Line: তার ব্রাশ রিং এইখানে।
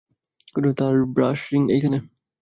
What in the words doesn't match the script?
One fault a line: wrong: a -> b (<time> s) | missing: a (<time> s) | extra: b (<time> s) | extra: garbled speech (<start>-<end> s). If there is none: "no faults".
no faults